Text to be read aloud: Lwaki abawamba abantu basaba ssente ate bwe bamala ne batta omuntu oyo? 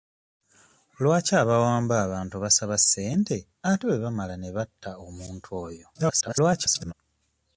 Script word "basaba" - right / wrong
right